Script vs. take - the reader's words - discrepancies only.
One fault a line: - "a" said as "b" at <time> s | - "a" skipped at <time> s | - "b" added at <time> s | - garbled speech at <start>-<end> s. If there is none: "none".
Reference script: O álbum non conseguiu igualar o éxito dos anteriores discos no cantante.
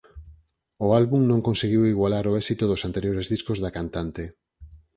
- "no" said as "da" at 3.6 s